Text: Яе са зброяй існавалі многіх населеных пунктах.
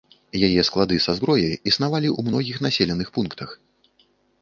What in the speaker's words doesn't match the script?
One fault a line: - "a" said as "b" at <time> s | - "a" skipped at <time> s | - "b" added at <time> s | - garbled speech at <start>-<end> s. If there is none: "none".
- "склады" added at 0.7 s
- "ў" added at 2.1 s